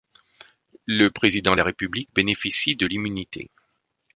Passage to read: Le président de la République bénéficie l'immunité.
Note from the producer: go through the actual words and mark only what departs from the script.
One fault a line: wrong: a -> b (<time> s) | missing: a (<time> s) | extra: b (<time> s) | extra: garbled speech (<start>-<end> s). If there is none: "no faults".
extra: de (2.8 s)